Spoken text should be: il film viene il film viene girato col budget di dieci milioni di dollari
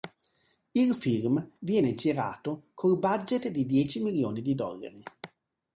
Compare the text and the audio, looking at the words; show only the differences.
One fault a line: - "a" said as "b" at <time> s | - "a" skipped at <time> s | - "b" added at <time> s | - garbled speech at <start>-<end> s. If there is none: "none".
- "il film viene" skipped at 1.9 s